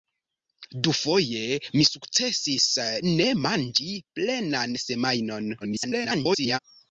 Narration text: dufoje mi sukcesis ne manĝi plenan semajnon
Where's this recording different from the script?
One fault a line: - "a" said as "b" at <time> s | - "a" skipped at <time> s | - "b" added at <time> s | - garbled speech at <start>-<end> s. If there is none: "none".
- garbled speech at 5.6-6.6 s